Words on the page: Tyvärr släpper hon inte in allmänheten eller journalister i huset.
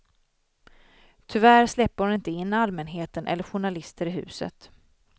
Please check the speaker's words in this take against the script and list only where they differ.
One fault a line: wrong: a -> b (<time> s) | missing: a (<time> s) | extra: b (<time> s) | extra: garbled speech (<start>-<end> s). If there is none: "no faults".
no faults